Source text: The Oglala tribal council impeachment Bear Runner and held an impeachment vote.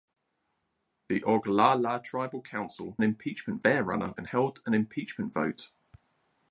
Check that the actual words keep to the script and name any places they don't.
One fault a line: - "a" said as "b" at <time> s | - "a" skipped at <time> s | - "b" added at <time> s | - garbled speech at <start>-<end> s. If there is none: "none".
none